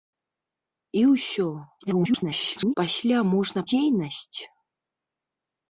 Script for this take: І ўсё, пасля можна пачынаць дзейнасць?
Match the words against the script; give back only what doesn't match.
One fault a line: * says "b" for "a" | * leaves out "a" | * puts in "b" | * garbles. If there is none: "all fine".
* garbles
* leaves out "пачынаць"